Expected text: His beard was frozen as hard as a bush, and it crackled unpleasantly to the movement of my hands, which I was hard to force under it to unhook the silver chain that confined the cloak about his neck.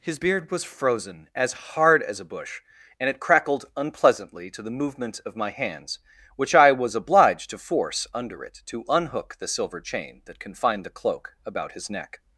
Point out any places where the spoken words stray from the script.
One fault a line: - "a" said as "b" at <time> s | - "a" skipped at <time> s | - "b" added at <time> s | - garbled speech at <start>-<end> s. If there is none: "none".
- "hard" said as "obliged" at 6.9 s